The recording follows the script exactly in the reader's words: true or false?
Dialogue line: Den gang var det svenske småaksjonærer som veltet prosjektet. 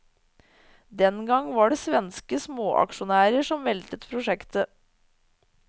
true